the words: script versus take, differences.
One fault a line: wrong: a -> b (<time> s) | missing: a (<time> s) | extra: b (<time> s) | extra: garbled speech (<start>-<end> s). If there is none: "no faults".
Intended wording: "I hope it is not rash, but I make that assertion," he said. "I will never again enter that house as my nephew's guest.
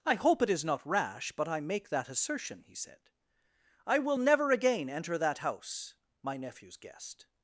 missing: as (6.0 s)